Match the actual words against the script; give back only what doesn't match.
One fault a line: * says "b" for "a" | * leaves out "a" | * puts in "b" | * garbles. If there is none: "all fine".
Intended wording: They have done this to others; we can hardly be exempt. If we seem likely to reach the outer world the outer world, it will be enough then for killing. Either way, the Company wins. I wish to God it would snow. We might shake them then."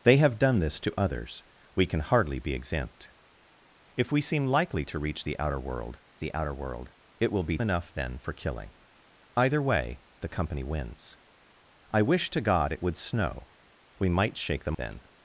all fine